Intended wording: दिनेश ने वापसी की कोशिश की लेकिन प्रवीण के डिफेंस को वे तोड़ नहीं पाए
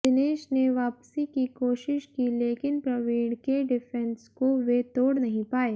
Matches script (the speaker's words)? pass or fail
pass